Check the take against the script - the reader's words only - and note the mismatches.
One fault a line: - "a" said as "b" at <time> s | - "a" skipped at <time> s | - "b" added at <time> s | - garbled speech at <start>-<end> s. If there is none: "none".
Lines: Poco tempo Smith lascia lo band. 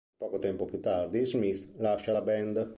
- "più tardi" added at 0.7 s
- "lo" said as "la" at 2.1 s